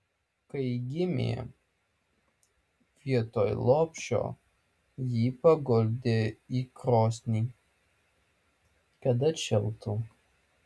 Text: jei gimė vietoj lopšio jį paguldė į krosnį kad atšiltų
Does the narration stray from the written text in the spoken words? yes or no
yes